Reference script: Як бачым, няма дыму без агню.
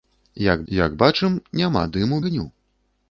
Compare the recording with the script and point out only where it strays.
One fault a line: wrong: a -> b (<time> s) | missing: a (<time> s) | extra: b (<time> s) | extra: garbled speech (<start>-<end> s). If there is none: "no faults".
extra: як (0.7 s)
missing: без (2.2 s)